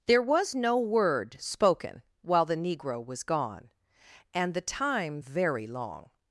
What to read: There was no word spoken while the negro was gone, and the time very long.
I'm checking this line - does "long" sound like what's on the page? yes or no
yes